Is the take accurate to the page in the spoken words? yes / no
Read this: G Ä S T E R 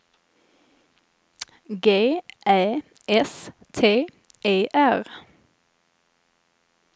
yes